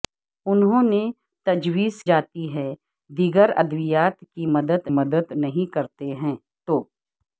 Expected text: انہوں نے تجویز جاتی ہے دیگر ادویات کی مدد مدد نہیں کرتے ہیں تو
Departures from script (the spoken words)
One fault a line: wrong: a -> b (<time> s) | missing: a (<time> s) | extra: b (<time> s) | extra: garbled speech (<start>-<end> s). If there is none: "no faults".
no faults